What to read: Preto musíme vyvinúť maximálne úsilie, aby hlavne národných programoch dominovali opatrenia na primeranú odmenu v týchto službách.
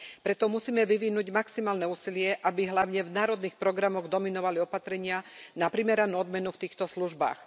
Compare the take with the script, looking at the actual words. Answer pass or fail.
fail